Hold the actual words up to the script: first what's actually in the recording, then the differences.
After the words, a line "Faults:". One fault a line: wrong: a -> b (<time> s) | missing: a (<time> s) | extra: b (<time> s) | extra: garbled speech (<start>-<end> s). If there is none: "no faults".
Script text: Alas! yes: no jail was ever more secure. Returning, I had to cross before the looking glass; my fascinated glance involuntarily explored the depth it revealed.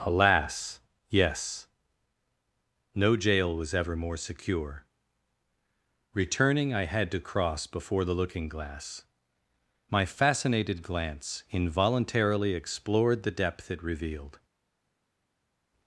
Alas! yes: no jail was ever more secure. Returning, I had to cross before the looking glass; my fascinated glance involuntarily explored the depth it revealed.
Faults:
no faults